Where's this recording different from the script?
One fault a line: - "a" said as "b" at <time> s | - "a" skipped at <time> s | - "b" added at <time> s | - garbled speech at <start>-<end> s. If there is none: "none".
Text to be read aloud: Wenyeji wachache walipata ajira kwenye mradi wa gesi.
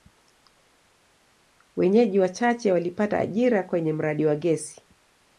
none